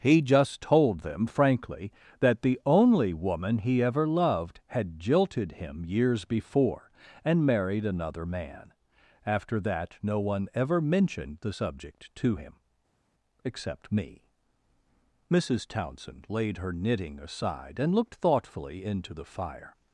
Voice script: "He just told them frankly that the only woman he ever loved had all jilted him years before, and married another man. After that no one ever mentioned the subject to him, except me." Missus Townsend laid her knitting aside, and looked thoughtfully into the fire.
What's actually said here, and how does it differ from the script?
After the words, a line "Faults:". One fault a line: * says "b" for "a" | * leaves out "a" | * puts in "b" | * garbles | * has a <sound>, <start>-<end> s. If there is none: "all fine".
"He just told them frankly that the only woman he ever loved had jilted him years before, and married another man. After that no one ever mentioned the subject to him, except me." Missus Townsend laid her knitting aside, and looked thoughtfully into the fire.
Faults:
* leaves out "all"